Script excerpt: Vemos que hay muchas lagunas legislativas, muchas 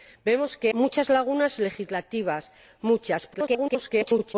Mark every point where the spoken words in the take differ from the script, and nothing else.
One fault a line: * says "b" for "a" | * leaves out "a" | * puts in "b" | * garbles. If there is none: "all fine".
* leaves out "hay"
* garbles